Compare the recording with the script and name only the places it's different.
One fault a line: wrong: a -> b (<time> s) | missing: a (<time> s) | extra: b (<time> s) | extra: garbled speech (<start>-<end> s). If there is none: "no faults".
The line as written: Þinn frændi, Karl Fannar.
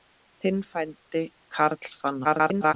extra: garbled speech (2.2-2.7 s)